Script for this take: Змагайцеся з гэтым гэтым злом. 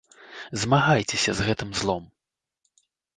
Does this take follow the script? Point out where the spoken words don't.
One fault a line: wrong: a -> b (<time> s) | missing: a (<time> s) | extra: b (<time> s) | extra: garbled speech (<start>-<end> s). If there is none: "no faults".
missing: гэтым (1.7 s)